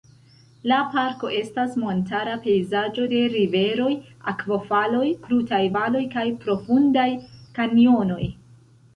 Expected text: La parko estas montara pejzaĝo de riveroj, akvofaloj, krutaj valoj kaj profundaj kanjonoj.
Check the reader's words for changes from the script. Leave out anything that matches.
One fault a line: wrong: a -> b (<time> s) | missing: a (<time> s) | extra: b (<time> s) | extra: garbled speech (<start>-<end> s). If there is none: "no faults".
no faults